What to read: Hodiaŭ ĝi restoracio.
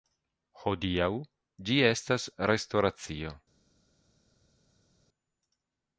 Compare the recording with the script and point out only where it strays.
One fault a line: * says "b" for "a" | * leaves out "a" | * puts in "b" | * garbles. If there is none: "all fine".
* puts in "estas"